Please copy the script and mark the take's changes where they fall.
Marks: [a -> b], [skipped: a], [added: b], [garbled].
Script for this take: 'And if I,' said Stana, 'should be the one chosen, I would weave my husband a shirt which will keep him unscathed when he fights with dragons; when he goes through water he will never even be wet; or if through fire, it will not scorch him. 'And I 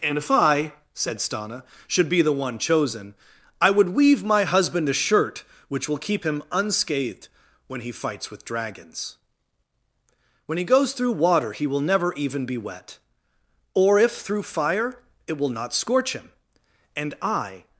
'And if I,' said Stana, 'should be the one chosen, I would weave my husband a shirt which will keep him unscathed when he fights with dragons; when he goes through water he will never even be wet; or if through fire, it will not scorch him. 'And I